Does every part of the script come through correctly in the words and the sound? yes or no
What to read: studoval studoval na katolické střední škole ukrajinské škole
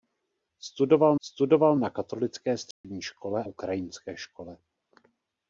no